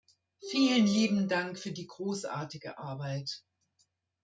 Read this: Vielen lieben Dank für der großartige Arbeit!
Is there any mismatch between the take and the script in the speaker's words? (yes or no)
yes